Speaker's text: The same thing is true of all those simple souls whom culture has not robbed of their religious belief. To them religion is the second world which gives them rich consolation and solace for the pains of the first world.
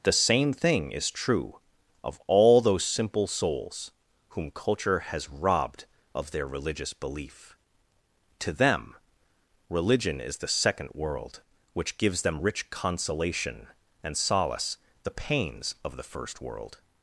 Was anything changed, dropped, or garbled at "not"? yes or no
yes